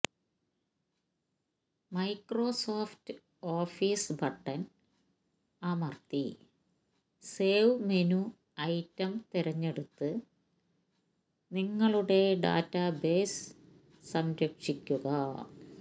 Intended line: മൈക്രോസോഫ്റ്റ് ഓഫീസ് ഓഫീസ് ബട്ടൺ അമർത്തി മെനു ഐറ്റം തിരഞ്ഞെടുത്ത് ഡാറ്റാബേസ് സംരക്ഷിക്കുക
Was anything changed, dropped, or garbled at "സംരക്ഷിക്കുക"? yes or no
no